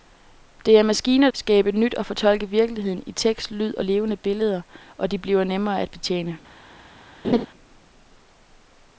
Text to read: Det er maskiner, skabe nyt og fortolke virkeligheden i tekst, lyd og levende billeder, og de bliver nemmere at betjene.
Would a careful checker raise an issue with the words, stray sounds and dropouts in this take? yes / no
yes